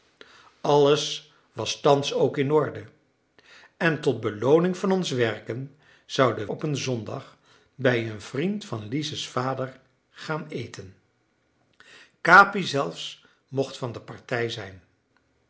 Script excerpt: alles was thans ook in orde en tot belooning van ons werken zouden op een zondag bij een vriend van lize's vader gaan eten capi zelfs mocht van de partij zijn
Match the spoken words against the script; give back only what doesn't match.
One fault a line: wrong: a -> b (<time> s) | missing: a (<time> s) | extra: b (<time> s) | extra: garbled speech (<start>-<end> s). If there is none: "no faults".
no faults